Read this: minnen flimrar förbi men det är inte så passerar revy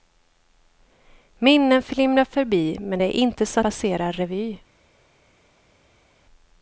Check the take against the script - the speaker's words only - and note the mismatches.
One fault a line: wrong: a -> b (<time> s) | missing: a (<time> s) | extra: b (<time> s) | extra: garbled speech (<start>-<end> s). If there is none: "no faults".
no faults